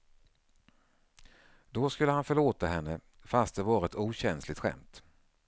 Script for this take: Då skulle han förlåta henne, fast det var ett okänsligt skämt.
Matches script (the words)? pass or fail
pass